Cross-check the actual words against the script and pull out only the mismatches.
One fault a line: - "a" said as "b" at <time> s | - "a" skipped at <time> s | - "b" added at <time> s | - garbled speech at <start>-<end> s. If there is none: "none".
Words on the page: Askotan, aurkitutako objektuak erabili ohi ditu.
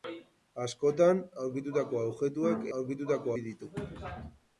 - "erabili" said as "aurkitutako" at 2.8 s